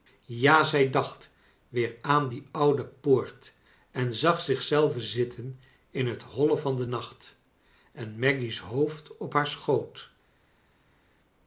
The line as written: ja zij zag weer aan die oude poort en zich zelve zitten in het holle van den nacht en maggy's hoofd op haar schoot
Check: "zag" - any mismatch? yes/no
yes